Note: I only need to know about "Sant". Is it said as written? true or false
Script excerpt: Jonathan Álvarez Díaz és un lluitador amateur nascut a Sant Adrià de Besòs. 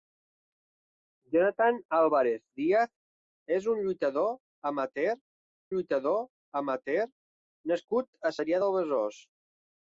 false